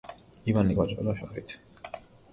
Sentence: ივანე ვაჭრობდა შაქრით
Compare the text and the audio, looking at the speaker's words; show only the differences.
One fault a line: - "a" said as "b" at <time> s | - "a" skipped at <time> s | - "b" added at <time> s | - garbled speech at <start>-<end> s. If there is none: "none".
none